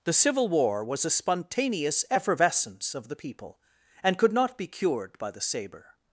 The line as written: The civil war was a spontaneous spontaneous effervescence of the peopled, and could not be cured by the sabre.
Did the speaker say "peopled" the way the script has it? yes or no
no